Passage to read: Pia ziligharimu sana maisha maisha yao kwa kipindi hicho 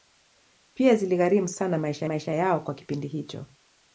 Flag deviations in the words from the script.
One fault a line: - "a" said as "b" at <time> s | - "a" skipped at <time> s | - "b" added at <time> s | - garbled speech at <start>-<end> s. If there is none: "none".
none